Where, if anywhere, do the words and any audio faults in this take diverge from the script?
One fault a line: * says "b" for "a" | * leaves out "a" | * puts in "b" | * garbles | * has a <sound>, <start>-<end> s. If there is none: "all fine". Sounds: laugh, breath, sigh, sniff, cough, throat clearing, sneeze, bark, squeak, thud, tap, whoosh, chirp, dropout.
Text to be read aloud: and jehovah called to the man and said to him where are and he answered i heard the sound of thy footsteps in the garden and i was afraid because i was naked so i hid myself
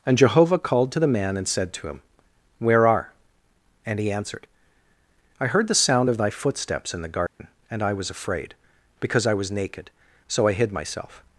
* has a dropout, 7.3-7.4 s